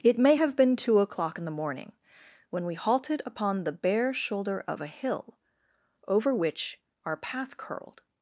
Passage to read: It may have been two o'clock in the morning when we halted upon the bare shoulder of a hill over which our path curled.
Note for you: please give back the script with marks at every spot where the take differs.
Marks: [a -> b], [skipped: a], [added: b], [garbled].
It may have been two o'clock in the morning when we halted upon the bare shoulder of a hill over which our path curled.